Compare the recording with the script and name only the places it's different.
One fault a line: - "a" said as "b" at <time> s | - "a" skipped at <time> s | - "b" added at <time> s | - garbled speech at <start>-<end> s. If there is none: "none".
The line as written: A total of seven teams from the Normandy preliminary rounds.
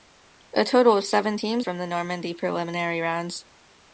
none